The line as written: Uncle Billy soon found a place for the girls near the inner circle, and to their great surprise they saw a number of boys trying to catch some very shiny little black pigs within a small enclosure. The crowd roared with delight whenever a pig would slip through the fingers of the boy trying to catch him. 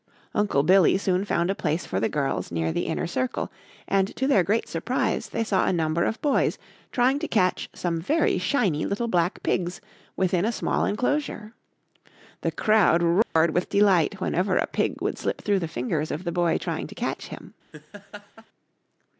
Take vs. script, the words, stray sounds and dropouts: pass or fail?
fail